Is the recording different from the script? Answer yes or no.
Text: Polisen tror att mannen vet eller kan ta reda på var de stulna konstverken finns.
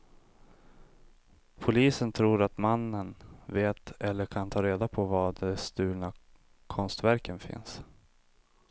no